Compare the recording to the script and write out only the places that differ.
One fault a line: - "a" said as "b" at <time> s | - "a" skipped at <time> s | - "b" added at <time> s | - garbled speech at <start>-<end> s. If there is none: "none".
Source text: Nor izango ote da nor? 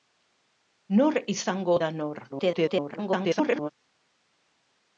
- "ote" skipped at 1.8 s
- garbled speech at 2.3-3.7 s